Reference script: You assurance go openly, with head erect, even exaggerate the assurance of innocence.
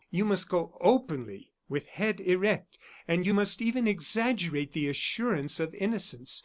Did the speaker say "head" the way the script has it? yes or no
yes